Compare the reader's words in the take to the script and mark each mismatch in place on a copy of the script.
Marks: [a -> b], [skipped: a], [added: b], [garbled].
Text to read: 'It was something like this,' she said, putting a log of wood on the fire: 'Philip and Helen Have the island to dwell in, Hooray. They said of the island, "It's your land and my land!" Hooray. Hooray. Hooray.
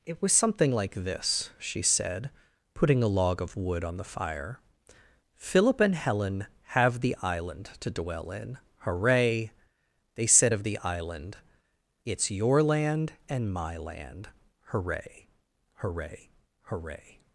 'It was something like this,' she said, putting a log of wood on the fire: 'Philip and Helen Have the island to dwell in, Hooray. They said of the island, "It's your land and my land!" Hooray. Hooray. Hooray.